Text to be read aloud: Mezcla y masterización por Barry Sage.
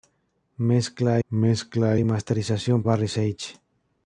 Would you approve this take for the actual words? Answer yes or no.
no